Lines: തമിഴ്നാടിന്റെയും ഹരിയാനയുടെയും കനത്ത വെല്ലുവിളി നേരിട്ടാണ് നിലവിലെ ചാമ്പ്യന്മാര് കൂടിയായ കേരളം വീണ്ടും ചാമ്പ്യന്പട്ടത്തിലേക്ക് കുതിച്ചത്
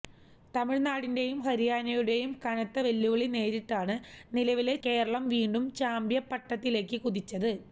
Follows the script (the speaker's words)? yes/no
no